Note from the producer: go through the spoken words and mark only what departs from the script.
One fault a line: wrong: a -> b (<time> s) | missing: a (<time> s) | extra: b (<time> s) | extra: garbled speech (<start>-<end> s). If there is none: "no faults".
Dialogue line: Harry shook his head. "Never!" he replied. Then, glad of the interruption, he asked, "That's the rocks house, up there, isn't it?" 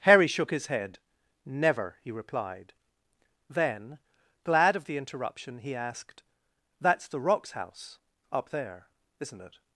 no faults